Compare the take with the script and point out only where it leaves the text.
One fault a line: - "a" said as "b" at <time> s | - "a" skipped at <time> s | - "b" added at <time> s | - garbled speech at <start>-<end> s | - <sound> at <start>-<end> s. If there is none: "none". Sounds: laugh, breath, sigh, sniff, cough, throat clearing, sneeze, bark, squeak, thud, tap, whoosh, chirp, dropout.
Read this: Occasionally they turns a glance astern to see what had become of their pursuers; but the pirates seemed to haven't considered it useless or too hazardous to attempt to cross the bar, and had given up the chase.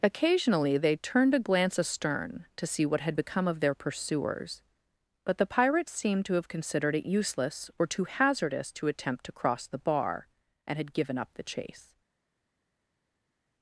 - "turns" said as "turned" at 0.9 s
- "haven't" said as "have" at 6.3 s